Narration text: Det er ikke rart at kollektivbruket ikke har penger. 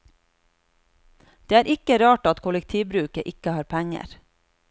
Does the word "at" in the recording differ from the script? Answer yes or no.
no